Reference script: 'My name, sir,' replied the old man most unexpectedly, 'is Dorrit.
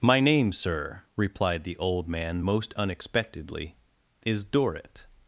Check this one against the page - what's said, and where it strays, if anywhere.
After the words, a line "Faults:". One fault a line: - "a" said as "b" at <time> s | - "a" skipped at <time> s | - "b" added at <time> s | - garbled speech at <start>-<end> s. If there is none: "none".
'My name, sir,' replied the old man most unexpectedly, 'is Dorrit.
Faults:
none